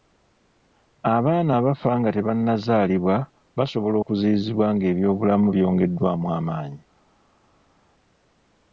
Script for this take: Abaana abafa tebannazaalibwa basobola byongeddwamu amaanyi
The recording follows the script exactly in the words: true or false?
false